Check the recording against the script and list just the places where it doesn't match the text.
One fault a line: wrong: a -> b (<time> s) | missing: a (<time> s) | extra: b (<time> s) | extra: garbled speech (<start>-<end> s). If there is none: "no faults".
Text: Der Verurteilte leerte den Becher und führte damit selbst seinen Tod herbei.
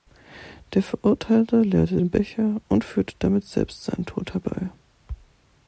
no faults